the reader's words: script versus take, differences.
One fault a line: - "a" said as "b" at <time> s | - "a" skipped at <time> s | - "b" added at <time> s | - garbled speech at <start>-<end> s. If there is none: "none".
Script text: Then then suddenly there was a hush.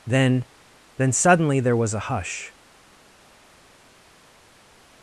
none